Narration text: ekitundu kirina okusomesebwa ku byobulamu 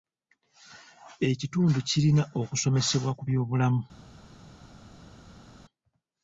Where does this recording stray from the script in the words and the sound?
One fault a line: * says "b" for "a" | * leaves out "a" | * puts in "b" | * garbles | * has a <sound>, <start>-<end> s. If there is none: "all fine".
all fine